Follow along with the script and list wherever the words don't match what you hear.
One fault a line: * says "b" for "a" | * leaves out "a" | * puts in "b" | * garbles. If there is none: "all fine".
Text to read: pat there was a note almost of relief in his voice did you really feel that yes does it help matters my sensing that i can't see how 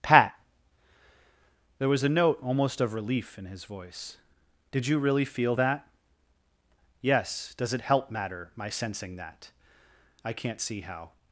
* says "matter" for "matters"